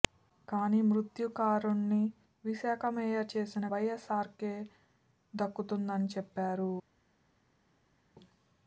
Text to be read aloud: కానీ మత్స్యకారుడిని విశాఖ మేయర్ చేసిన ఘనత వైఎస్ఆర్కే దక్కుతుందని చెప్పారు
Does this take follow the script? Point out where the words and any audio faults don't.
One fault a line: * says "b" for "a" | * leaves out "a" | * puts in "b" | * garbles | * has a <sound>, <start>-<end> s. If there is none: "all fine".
* leaves out "ఘనత"